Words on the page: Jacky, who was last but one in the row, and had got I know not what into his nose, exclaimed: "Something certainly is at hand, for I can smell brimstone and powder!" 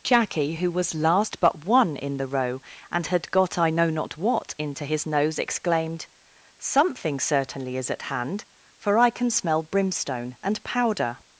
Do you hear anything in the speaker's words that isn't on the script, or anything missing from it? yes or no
no